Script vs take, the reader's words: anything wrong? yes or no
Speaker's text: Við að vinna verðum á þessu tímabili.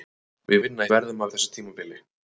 no